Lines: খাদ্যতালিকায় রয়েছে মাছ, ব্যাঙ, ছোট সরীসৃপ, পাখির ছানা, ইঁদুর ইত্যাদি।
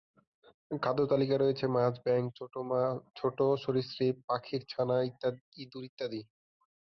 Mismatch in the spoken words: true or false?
false